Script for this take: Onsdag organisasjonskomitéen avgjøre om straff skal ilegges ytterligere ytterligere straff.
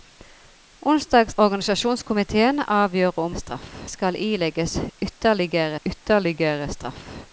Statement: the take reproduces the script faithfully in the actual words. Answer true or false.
true